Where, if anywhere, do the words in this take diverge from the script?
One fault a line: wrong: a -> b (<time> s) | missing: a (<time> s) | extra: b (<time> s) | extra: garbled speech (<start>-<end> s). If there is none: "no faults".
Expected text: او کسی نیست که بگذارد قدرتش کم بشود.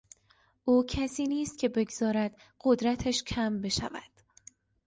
no faults